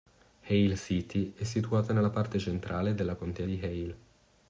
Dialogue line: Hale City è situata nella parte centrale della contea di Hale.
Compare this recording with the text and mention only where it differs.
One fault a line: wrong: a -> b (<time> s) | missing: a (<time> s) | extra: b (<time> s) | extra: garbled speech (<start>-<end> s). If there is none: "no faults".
no faults